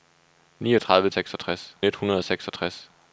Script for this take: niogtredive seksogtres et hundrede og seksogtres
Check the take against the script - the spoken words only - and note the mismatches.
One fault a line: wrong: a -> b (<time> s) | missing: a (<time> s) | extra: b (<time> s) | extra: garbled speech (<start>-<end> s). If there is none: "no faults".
no faults